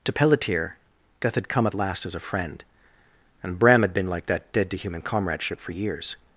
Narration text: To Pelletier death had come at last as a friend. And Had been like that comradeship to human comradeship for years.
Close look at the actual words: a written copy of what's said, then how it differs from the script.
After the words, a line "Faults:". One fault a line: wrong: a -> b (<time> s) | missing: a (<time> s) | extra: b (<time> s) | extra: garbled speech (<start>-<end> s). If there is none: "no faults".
To Pelletier death had come at last as a friend. And Bram had been like that dead to human comradeship for years.
Faults:
extra: Bram (3.6 s)
wrong: comradeship -> dead (4.5 s)